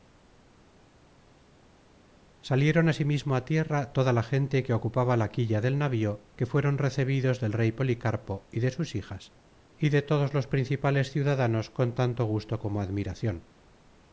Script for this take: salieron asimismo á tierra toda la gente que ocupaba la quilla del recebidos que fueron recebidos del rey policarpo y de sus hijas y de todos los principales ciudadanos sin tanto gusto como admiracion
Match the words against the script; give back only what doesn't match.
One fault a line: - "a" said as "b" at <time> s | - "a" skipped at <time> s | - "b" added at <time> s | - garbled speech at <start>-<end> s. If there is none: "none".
- "recebidos" said as "navío" at 5.8 s
- "sin" said as "con" at 11.7 s